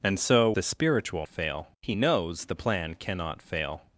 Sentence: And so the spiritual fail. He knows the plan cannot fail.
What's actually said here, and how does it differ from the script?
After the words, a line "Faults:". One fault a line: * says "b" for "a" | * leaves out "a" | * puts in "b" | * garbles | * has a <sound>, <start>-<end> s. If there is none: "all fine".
And so the spiritual fail. He knows the plan cannot fail.
Faults:
all fine